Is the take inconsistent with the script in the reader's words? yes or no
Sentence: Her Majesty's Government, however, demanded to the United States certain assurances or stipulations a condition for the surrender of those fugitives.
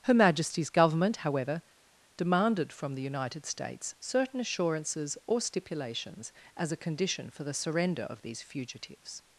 yes